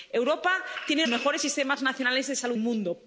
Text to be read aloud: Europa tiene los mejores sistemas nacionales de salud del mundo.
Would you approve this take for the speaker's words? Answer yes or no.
no